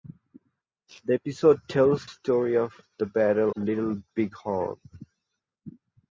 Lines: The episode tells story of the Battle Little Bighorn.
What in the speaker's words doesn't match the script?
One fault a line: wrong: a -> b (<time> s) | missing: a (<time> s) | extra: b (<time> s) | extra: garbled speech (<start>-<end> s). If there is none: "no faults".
no faults